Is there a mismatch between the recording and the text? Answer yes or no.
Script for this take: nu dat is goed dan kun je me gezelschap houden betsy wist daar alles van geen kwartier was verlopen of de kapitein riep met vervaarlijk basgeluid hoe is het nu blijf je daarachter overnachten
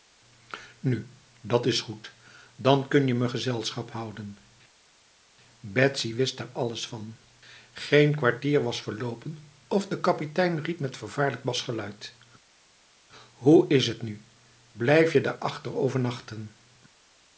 no